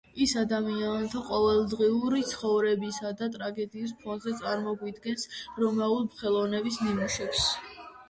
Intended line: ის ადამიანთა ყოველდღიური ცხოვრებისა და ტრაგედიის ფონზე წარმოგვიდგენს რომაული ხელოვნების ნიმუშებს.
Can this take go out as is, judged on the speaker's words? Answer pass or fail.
pass